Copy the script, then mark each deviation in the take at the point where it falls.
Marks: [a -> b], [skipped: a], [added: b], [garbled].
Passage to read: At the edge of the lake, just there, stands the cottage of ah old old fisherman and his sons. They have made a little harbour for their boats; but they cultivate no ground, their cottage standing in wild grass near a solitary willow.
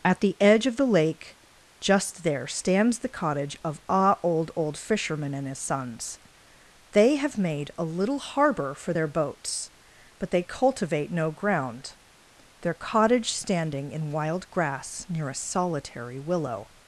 At the edge of the lake, just there, stands the cottage of ah old old fisherman and his sons. They have made a little harbour for their boats; but they cultivate no ground, their cottage standing in wild grass near a solitary willow.